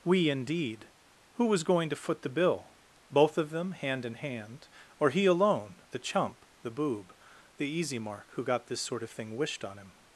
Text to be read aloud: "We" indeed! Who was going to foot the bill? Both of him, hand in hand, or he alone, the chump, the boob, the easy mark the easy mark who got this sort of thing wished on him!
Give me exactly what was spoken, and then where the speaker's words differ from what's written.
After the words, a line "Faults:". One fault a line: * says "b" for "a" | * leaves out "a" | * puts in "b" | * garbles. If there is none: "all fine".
"We" indeed! Who was going to foot the bill? Both of them, hand in hand, or he alone, the chump, the boob, the easy mark who got this sort of thing wished on him!
Faults:
* says "them" for "him"
* leaves out "the easy mark"